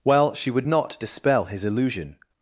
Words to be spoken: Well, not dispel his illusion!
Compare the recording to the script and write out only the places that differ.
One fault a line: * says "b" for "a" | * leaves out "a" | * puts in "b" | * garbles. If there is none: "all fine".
* puts in "she would"